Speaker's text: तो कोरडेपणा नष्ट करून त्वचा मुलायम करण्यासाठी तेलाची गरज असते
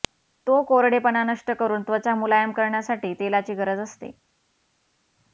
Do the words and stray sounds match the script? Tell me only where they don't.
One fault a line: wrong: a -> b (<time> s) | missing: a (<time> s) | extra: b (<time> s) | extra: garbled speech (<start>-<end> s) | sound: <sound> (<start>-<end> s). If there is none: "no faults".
no faults